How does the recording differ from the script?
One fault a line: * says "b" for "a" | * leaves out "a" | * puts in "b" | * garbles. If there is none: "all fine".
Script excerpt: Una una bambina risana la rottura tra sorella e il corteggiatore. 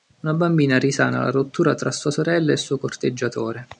* leaves out "una"
* puts in "sua"
* puts in "suo"